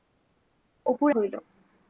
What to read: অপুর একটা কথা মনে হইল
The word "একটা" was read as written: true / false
false